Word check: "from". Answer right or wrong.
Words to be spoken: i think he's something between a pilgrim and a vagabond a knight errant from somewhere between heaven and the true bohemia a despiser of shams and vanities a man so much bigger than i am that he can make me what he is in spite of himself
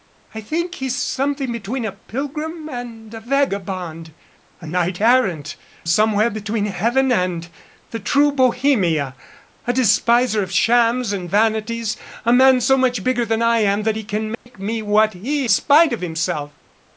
wrong